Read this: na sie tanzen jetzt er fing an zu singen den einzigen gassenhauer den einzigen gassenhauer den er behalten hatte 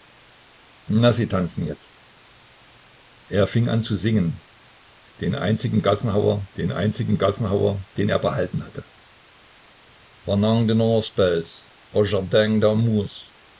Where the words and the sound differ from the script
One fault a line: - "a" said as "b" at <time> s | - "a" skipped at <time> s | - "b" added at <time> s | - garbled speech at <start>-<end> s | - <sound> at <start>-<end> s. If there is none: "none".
none